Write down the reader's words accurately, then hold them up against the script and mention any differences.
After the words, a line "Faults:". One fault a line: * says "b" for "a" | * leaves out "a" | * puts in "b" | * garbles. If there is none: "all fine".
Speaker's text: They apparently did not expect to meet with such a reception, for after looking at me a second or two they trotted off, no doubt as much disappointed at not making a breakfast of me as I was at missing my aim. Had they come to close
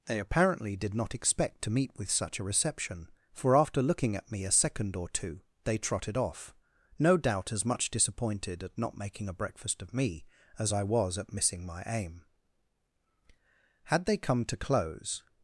They apparently did not expect to meet with such a reception, for after looking at me a second or two they trotted off, no doubt as much disappointed at not making a breakfast of me as I was at missing my aim. Had they come to close
Faults:
all fine